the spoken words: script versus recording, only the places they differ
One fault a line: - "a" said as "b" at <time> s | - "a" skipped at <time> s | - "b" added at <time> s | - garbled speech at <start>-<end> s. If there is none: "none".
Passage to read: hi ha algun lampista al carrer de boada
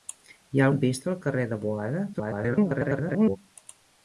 - "algun" skipped at 0.7 s
- garbled speech at 2.1-3.4 s